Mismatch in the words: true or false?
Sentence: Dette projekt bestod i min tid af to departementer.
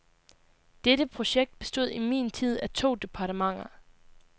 false